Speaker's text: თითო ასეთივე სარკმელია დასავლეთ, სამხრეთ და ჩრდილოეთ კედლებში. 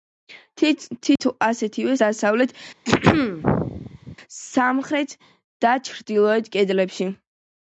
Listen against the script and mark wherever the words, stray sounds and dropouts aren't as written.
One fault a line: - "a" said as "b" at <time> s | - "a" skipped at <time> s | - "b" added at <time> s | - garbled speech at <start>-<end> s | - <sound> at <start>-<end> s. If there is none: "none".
- dropout at 1.2-1.2 s
- "სარკმელია" skipped at 2.0 s
- throat clearing at 2.9-4.2 s